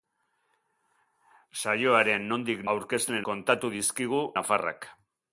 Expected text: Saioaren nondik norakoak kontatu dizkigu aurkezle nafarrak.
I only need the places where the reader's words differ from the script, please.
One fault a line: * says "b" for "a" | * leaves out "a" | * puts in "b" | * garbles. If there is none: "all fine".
* says "aurkezle" for "norakoak"
* leaves out "aurkezle"